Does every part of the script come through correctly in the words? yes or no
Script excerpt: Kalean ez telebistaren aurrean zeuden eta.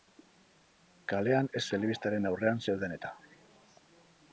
yes